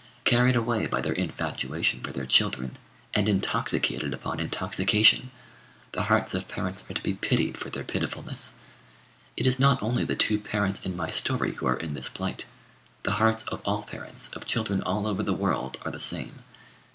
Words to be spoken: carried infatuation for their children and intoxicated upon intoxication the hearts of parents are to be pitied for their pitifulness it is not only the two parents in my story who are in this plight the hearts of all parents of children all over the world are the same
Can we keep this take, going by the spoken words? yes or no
no